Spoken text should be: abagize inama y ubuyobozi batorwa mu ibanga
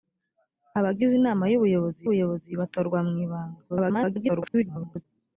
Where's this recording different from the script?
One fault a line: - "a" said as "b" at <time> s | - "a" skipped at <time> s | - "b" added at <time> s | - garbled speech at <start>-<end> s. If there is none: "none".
- "ubuyobozi" added at 2.0 s
- garbled speech at 3.7-5.0 s